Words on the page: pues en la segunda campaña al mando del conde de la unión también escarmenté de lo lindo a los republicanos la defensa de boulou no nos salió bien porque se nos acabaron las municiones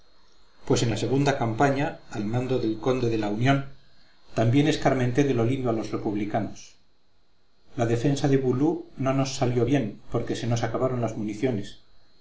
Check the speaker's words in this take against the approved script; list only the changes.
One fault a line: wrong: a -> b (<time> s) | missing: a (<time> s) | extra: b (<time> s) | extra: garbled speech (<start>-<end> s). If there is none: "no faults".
no faults